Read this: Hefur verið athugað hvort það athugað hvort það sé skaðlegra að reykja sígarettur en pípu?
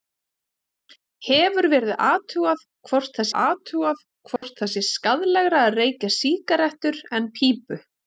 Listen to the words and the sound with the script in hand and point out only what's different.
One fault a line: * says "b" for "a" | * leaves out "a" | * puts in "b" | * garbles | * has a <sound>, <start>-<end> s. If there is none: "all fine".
* has a dropout, 4.4-4.4 s